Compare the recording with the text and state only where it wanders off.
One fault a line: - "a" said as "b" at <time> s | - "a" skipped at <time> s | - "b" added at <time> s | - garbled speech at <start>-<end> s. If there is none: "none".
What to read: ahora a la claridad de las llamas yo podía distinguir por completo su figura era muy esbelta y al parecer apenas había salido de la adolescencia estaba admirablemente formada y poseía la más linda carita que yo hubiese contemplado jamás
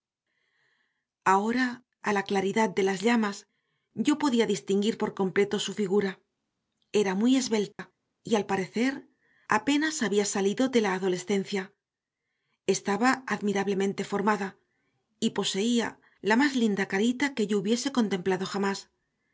none